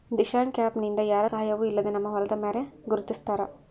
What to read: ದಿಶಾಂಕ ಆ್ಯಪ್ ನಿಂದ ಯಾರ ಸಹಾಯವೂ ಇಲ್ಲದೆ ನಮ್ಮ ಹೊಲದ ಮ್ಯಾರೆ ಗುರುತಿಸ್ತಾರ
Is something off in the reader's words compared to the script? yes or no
no